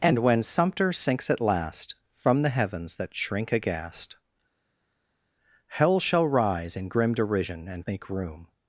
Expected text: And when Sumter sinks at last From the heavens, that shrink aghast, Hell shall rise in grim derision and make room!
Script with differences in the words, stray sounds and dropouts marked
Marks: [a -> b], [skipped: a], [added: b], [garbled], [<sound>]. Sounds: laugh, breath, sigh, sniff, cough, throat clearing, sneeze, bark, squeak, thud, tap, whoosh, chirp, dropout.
And when Sumter sinks at last From the heavens, that shrink aghast, Hell shall rise in grim derision and make room!